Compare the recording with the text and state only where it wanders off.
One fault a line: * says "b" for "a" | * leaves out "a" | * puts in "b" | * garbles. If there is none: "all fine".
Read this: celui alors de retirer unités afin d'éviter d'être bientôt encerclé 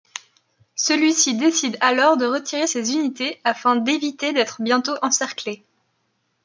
* puts in "ci décide"
* puts in "ses"